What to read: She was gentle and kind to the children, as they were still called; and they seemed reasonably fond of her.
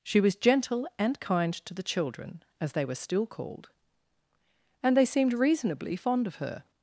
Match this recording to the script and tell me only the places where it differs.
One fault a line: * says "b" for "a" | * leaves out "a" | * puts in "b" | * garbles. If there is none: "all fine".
all fine